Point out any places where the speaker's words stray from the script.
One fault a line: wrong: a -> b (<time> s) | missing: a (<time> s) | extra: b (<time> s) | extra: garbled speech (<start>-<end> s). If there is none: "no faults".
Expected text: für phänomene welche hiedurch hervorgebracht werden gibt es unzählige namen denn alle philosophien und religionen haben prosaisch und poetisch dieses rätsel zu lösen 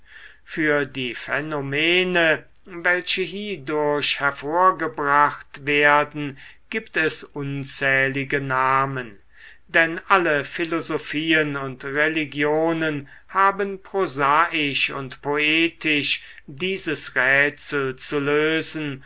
extra: die (0.9 s)